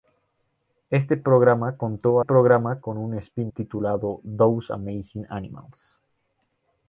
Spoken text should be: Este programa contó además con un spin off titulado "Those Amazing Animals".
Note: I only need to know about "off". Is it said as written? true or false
false